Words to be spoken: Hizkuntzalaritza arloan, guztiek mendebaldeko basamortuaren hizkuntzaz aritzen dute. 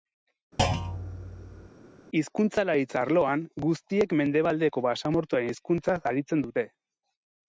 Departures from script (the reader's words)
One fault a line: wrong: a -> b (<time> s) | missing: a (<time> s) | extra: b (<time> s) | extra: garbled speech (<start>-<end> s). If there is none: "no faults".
no faults